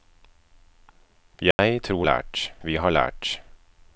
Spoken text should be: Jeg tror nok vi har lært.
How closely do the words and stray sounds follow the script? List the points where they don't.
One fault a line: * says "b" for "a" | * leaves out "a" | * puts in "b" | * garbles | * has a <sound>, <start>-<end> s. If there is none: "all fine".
* has a dropout, 1.5-1.6 s
* says "lært" for "nok"